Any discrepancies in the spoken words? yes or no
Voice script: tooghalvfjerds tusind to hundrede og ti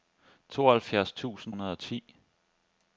yes